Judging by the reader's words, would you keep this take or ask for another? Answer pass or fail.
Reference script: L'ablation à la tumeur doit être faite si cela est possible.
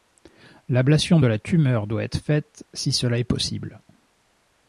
fail